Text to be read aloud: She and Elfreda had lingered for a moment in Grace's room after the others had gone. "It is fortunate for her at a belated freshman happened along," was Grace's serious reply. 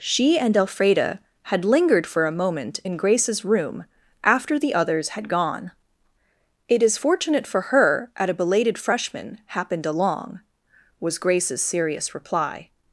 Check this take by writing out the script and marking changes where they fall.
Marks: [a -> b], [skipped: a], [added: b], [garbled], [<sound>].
She and Elfreda had lingered for a moment in Grace's room after the others had gone. "It is fortunate for her at a belated freshman happened along," was Grace's serious reply.